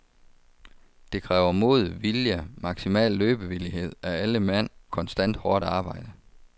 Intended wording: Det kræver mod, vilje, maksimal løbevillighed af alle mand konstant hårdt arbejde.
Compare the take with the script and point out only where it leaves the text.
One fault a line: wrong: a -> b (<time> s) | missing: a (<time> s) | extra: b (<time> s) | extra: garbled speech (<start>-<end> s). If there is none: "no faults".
no faults